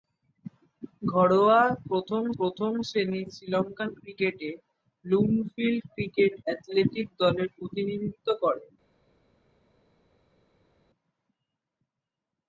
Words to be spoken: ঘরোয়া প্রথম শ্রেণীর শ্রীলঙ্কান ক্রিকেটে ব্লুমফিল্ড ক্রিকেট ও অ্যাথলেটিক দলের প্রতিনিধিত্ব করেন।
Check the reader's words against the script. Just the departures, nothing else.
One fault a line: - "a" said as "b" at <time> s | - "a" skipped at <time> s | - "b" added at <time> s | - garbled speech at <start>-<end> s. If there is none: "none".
- "প্রথম" added at 2.4 s
- "ও" skipped at 6.3 s